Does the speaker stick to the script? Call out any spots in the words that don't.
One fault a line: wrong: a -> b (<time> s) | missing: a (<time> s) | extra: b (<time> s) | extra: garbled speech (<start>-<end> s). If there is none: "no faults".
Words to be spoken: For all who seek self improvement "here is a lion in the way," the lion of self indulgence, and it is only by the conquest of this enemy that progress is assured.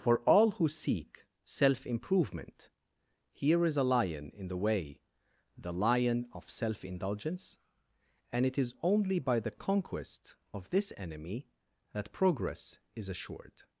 no faults